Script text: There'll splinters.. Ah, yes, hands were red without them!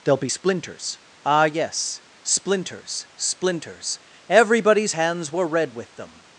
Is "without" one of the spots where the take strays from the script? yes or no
yes